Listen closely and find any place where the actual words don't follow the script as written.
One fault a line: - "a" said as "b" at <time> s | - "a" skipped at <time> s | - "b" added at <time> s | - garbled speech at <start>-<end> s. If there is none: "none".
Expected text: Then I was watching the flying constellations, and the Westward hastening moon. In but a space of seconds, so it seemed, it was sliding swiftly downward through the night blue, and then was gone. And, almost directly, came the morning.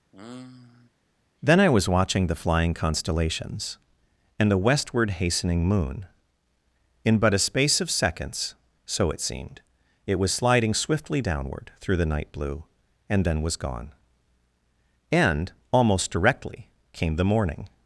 none